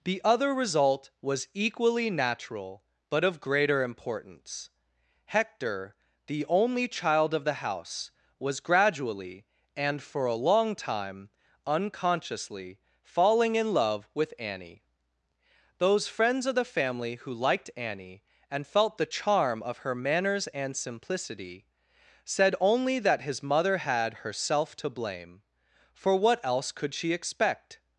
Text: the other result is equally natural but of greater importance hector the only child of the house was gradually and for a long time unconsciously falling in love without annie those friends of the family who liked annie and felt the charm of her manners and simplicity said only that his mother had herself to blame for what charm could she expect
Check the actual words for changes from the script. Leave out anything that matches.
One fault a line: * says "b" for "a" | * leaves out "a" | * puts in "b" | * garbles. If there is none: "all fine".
* says "was" for "is"
* says "with" for "without"
* says "else" for "charm"